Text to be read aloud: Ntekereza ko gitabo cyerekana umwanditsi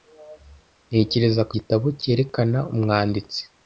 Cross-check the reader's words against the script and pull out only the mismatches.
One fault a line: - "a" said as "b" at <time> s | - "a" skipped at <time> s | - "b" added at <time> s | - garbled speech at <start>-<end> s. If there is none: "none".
none